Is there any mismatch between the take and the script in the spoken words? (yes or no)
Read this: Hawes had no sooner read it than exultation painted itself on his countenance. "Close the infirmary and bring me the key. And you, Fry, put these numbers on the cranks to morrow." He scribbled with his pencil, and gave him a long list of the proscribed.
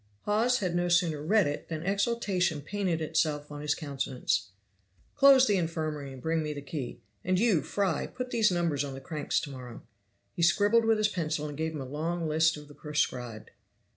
no